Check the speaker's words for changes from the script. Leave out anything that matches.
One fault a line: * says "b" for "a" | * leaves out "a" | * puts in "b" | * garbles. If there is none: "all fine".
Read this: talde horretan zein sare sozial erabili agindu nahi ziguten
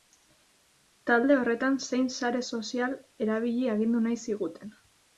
all fine